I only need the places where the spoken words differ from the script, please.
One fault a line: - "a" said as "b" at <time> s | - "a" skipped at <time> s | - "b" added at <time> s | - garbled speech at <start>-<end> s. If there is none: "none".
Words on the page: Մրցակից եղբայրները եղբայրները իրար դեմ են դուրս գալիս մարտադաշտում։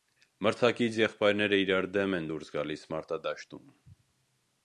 - "եղբայրները" skipped at 1.6 s